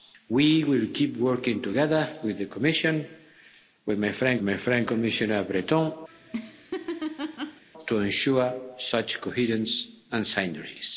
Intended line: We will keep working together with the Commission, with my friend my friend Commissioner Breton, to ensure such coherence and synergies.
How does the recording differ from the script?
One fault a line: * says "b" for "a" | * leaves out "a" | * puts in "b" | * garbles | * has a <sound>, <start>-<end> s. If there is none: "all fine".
* has a laugh, 6.1-7.6 s